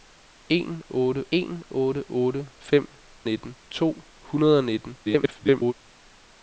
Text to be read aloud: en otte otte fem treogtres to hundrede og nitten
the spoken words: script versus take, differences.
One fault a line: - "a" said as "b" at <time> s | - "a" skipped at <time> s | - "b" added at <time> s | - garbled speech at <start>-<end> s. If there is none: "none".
- "en" added at 1.3 s
- "otte" added at 2.1 s
- "treogtres" said as "nitten" at 3.2 s
- garbled speech at 5.0-5.7 s